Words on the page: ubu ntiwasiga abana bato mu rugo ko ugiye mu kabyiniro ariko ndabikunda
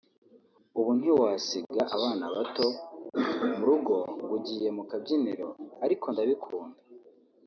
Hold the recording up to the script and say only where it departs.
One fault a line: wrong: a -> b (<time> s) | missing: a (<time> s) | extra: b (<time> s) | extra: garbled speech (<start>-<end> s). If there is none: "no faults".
wrong: ko -> ngo (4.1 s)